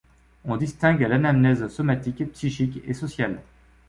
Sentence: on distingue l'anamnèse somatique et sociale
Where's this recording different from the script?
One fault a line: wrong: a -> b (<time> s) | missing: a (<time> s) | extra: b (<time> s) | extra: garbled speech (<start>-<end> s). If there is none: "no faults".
extra: psychique (2.3 s)